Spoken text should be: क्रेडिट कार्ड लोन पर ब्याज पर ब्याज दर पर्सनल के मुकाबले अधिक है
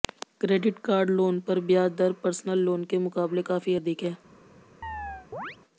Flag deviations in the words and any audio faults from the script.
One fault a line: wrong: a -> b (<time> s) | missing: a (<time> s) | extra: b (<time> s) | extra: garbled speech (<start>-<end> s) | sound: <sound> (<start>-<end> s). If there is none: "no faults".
missing: पर ब्याज (1.9 s)
extra: लोन (2.6 s)
extra: काफी (3.5 s)
sound: chirp (4.8-5.6 s)